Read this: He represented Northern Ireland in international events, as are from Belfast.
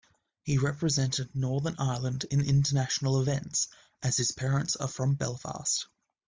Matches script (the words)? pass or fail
fail